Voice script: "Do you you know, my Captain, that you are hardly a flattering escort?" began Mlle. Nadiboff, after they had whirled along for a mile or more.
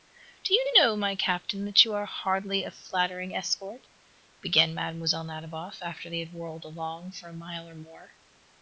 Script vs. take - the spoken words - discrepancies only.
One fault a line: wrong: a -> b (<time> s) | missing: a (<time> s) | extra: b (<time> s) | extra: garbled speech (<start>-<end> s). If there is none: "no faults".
no faults